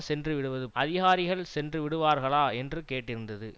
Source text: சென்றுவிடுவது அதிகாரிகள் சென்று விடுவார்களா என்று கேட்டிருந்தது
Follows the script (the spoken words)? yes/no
yes